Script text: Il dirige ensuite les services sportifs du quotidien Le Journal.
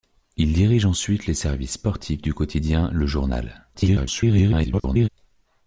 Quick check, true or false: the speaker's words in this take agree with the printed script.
false